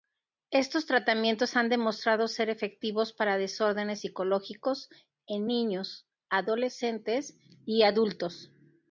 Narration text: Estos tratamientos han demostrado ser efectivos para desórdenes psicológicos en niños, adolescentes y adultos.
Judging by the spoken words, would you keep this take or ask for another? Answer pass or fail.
pass